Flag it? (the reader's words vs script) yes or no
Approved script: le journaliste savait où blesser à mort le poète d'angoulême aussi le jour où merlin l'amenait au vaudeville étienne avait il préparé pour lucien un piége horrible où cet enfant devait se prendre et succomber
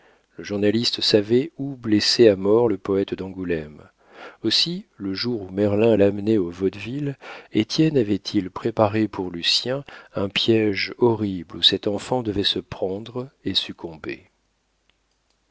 no